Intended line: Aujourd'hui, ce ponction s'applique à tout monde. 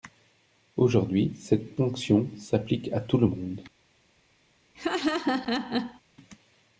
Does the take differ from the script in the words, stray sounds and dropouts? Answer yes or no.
yes